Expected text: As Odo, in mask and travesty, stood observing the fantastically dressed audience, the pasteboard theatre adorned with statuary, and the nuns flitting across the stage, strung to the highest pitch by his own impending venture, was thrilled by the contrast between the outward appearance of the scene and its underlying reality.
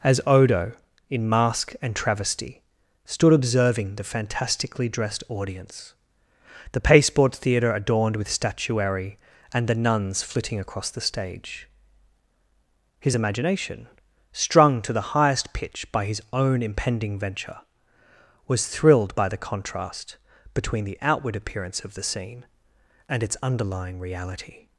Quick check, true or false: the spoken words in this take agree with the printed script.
false